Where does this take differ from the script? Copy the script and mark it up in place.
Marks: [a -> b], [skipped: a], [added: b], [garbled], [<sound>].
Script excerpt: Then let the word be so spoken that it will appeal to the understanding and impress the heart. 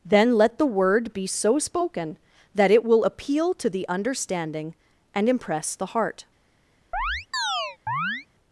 Then let the word be so spoken that it will appeal to the understanding and impress the heart. [chirp]